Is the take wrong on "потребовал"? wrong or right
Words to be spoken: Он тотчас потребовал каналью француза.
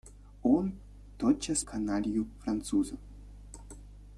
wrong